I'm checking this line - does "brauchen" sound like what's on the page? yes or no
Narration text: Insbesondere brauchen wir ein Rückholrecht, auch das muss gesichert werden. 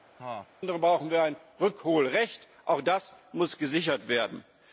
yes